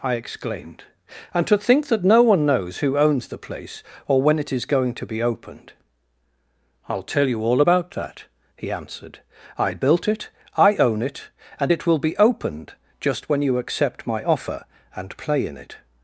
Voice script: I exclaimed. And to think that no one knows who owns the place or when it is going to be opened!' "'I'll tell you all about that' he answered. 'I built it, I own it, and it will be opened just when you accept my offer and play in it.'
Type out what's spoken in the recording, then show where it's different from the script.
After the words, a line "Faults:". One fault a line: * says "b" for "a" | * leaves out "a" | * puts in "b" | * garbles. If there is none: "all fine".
I exclaimed. And to think that no one knows who owns the place or when it is going to be opened!' "'I'll tell you all about that' he answered. 'I built it, I own it, and it will be opened just when you accept my offer and play in it.'
Faults:
all fine